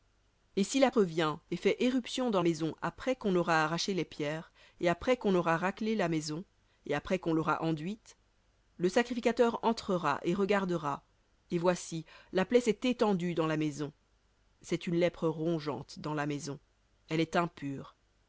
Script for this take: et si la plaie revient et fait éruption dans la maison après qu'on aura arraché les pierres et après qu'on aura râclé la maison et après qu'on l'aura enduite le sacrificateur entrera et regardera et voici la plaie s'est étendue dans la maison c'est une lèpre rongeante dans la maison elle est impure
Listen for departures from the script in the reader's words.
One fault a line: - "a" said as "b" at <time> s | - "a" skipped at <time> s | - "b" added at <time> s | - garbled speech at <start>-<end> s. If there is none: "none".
- "plaie" skipped at 0.9 s
- "la" skipped at 2.4 s